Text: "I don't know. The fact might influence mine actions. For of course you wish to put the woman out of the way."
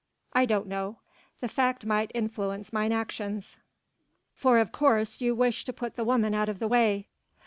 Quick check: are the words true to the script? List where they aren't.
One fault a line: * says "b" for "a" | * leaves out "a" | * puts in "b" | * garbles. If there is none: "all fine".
all fine